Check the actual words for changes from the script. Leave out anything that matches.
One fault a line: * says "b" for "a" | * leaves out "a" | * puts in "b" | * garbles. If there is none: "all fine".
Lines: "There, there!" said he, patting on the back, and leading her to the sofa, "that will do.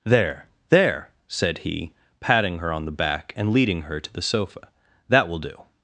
* puts in "her"